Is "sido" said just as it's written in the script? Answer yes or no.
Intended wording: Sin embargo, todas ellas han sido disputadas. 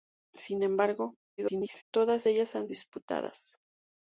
no